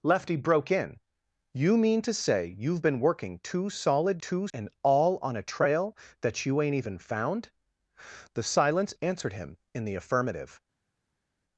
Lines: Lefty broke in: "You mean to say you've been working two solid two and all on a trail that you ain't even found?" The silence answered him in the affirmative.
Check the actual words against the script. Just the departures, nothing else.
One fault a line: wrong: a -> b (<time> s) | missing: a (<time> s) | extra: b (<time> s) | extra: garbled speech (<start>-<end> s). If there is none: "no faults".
no faults